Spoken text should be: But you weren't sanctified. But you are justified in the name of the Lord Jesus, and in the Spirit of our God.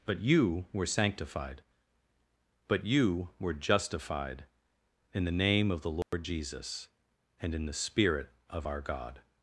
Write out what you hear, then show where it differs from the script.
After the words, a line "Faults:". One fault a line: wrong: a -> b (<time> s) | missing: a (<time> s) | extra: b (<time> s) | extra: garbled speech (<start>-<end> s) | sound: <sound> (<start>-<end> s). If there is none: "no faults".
But you were sanctified. But you were justified in the name of the Lord Jesus, and in the Spirit of our God.
Faults:
wrong: weren't -> were (0.7 s)
wrong: are -> were (3.4 s)
sound: dropout (6.0-6.1 s)